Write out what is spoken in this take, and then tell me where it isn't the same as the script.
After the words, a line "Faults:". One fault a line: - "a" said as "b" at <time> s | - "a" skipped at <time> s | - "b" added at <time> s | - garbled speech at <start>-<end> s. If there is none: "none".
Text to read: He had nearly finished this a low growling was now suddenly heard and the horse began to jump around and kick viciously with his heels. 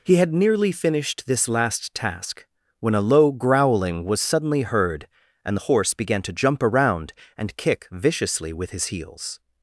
He had nearly finished this last task when a low growling was suddenly heard and the horse began to jump around and kick viciously with his heels.
Faults:
- "last task when" added at 1.5 s
- "now" skipped at 4.2 s